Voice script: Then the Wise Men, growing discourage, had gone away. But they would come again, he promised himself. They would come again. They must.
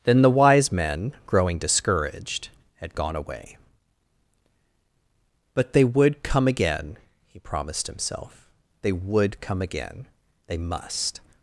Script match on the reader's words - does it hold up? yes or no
no